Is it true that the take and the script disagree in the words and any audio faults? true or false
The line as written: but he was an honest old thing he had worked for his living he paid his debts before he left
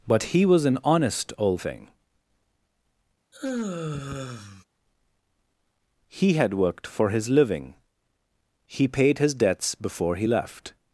true